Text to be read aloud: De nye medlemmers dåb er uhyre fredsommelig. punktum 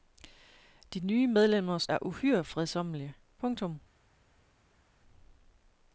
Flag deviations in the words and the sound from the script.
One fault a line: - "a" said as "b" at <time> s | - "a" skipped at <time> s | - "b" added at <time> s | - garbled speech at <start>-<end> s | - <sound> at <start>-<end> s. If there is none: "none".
- "dåb" skipped at 1.9 s